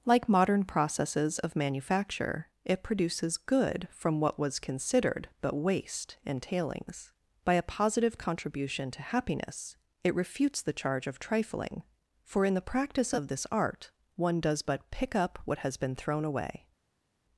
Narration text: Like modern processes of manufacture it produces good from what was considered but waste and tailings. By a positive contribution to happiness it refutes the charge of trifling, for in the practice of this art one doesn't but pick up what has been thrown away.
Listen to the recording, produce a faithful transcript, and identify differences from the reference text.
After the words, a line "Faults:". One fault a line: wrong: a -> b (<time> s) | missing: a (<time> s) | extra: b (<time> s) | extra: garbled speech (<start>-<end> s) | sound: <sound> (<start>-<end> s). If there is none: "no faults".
Like modern processes of manufacture it produces good from what was considered but waste and tailings. By a positive contribution to happiness it refutes the charge of trifling, for in the practice of this art one does but pick up what has been thrown away.
Faults:
wrong: doesn't -> does (14.4 s)